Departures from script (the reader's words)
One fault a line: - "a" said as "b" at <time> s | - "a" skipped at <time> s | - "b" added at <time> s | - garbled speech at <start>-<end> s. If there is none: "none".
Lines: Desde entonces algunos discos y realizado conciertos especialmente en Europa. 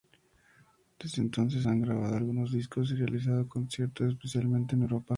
- "han grabado" added at 1.6 s